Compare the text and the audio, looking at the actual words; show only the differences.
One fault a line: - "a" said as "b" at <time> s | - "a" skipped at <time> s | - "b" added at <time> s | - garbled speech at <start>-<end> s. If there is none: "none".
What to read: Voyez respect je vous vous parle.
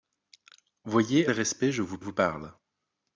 none